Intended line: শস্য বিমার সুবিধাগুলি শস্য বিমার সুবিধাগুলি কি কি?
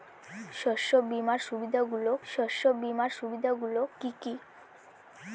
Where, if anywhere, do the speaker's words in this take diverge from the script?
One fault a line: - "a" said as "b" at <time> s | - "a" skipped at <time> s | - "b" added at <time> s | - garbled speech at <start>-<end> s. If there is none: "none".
none